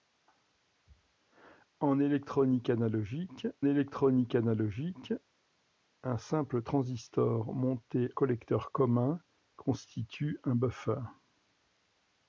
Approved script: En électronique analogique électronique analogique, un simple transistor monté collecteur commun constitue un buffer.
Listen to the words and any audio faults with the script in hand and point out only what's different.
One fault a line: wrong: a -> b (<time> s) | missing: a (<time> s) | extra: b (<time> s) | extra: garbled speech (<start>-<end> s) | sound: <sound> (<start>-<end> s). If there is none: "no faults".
no faults